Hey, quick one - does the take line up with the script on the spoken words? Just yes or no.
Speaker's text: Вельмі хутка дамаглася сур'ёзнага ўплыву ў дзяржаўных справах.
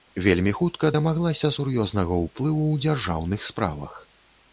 yes